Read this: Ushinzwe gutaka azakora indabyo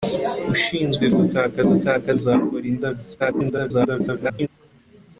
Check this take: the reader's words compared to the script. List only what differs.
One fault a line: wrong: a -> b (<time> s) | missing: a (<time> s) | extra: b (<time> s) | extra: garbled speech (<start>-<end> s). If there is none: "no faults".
extra: gutaka (1.7 s)
extra: garbled speech (3.2-4.5 s)